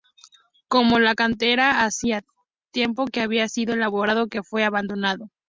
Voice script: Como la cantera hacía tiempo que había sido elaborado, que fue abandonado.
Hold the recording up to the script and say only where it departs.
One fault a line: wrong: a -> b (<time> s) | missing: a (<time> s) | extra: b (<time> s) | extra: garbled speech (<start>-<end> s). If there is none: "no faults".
no faults